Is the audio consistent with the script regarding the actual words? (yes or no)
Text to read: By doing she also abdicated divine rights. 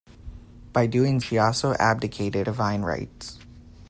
yes